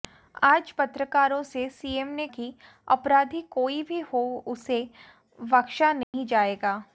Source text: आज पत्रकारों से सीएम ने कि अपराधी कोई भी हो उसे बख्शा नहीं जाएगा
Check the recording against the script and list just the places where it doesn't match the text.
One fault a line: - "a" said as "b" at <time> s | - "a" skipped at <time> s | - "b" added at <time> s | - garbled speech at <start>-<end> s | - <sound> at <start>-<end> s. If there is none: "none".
- dropout at 6.0-6.1 s